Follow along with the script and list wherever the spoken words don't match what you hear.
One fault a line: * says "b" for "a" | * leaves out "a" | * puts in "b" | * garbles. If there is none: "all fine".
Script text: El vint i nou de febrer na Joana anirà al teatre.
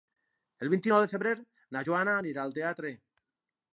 all fine